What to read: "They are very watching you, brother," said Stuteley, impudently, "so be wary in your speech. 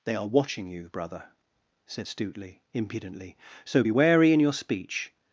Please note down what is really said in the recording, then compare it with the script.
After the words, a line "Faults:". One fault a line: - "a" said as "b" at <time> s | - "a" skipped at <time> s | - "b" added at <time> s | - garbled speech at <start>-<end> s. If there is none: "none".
"They are watching you, brother," said Stuteley, impudently, "so be wary in your speech.
Faults:
- "very" skipped at 0.2 s